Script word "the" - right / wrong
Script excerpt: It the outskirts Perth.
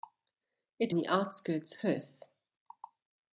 right